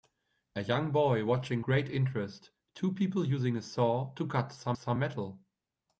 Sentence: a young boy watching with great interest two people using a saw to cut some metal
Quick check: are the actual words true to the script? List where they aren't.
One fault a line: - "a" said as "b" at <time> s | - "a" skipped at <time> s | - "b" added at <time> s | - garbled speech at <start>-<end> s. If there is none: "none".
- "with" skipped at 1.6 s
- "some" added at 4.7 s